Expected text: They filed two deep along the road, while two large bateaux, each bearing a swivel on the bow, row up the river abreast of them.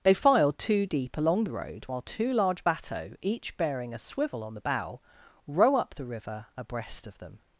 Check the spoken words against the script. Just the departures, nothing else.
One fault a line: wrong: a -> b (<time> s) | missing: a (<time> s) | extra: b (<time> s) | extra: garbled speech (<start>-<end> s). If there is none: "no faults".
no faults